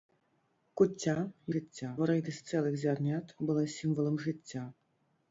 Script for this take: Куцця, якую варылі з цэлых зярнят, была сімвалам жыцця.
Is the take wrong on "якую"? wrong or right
wrong